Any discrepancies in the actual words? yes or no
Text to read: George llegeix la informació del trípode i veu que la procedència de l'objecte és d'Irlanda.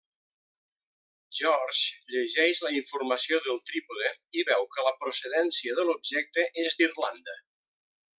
no